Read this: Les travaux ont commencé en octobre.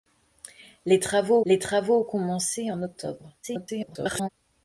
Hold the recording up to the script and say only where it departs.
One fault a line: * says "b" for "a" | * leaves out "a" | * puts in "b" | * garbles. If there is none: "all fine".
* puts in "les travaux"
* garbles